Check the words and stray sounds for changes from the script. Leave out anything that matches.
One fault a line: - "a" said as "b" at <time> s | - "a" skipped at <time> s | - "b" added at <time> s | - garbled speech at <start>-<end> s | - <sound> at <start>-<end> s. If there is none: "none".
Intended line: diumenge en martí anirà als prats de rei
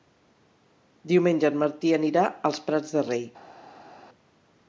none